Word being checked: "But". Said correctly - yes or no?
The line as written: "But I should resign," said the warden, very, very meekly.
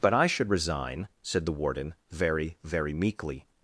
yes